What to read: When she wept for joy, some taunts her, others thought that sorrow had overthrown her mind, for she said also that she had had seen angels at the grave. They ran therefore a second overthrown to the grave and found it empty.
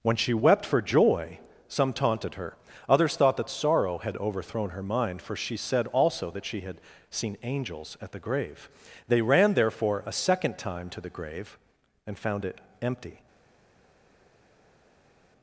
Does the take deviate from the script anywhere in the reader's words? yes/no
yes